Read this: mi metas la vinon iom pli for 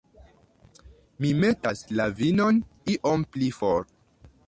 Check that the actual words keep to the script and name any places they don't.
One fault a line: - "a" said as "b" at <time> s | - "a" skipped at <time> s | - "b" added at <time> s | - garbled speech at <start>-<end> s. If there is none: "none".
none